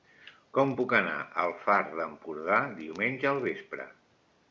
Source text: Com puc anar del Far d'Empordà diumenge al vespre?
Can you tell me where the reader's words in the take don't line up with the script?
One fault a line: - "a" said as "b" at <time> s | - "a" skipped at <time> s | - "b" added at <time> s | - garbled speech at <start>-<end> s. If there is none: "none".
- "del" said as "al" at 1.4 s